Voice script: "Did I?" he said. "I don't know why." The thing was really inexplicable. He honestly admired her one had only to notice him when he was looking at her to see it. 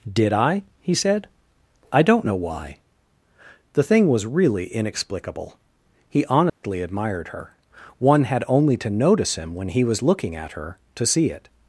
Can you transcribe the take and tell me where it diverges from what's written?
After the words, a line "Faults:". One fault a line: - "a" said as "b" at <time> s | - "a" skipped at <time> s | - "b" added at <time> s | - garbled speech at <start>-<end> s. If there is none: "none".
"Did I?" he said. "I don't know why." The thing was really inexplicable. He honestly admired her one had only to notice him when he was looking at her to see it.
Faults:
none